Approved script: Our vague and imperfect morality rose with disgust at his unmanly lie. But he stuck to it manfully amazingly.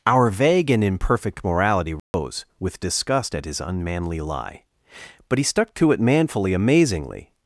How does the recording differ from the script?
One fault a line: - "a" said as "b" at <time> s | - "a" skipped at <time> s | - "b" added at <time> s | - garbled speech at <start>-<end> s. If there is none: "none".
none